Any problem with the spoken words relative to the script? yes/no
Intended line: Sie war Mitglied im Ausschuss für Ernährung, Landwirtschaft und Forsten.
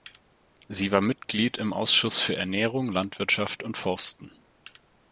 no